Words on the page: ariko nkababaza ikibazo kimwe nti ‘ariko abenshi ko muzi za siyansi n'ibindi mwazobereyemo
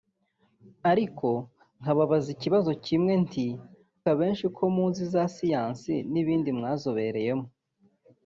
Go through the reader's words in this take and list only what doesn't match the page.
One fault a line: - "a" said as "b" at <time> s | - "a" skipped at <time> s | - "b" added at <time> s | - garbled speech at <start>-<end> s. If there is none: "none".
- "ariko" skipped at 3.5 s